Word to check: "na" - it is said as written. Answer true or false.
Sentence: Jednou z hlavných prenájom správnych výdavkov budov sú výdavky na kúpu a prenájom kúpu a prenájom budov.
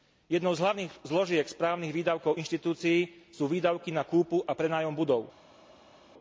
true